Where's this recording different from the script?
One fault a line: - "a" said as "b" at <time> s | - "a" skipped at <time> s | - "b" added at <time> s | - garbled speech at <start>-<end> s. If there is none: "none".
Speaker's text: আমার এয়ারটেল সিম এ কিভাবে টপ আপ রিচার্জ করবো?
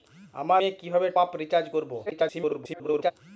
- "এয়ারটেল সিম" skipped at 0.6 s
- "টপ" skipped at 1.1 s
- garbled speech at 2.1-3.1 s